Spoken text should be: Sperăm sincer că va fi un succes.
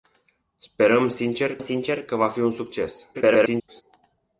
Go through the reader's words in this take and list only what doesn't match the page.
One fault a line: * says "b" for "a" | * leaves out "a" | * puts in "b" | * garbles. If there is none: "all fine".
* puts in "sincer"
* garbles